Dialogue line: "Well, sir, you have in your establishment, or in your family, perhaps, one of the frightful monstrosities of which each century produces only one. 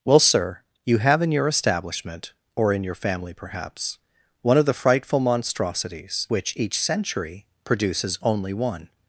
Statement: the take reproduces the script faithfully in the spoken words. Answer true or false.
false